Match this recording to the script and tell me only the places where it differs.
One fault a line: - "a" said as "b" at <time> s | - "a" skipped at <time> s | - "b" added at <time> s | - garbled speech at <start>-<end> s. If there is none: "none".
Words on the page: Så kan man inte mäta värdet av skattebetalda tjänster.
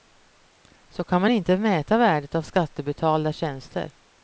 none